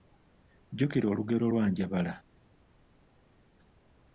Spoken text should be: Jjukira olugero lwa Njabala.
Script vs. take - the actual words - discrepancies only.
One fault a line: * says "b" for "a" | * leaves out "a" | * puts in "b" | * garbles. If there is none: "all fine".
all fine